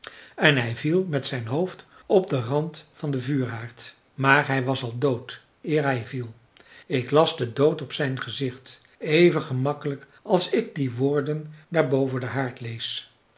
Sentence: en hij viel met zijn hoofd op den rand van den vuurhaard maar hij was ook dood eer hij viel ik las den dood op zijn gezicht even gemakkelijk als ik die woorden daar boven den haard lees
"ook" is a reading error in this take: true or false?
true